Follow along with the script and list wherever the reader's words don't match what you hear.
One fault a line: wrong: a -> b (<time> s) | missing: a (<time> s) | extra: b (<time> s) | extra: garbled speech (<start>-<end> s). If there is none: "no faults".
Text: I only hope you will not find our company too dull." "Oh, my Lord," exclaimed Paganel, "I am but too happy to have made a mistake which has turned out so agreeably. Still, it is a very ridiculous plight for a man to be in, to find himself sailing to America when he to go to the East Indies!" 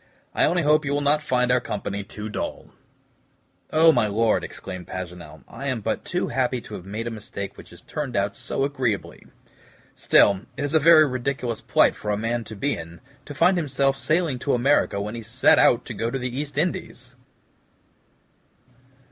extra: set out (15.2 s)